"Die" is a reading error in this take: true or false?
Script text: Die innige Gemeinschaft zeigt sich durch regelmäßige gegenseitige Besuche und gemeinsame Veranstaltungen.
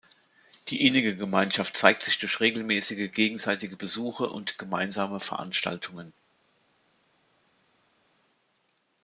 false